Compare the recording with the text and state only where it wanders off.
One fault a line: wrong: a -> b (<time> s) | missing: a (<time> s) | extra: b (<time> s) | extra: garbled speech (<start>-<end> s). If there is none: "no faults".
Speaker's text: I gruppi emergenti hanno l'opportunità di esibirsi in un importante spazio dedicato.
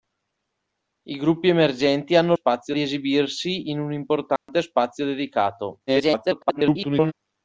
wrong: l'opportunità -> spazio (2.3 s)
extra: garbled speech (5.9-7.1 s)